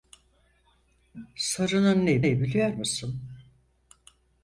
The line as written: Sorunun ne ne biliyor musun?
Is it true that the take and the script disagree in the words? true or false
false